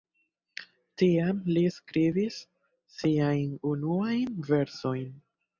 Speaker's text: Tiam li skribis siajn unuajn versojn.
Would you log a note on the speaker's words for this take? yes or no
no